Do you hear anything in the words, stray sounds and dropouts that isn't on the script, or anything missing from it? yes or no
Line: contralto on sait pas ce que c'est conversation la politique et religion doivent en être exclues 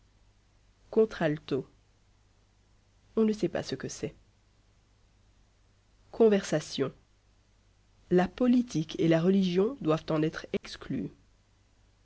yes